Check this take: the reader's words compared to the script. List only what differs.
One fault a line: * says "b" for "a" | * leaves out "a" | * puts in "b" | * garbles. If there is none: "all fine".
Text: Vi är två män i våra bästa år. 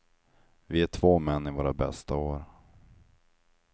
all fine